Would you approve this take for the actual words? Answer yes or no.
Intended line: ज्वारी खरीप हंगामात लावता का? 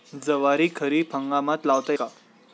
yes